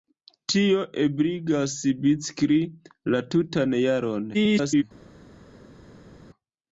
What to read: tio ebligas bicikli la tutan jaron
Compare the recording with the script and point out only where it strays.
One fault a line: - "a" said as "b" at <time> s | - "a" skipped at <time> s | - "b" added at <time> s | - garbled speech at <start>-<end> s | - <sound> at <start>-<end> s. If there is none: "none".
- garbled speech at 4.3-4.8 s